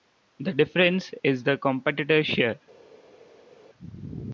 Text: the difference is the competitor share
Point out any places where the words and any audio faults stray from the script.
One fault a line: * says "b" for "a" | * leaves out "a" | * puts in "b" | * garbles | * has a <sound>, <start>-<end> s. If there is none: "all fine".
all fine